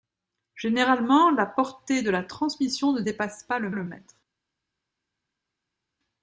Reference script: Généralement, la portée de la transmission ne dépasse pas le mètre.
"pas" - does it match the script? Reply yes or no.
yes